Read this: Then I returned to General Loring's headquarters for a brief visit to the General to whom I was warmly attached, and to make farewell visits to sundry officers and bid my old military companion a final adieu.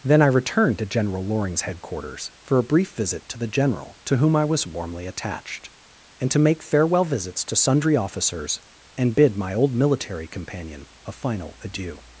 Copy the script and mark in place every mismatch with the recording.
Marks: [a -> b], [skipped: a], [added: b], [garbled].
Then I returned to General Loring's headquarters for a brief visit to the General to whom I was warmly attached, and to make farewell visits to sundry officers and bid my old military companion a final adieu.